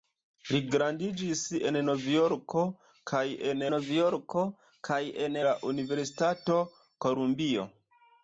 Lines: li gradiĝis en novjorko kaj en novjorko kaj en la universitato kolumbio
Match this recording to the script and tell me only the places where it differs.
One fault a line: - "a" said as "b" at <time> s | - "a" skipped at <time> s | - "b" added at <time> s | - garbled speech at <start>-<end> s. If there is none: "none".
none